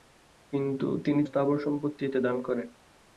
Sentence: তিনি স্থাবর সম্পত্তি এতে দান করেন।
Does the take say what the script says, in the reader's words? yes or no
yes